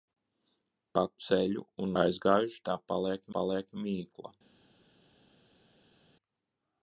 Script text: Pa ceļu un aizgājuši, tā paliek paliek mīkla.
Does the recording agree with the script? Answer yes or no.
yes